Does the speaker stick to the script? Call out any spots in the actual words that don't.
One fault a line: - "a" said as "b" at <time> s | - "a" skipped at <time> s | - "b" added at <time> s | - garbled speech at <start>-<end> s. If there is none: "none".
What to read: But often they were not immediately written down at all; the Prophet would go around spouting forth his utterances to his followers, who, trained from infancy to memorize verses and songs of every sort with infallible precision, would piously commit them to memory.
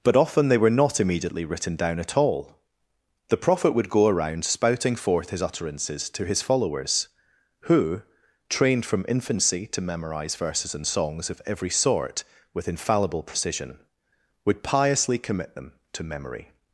none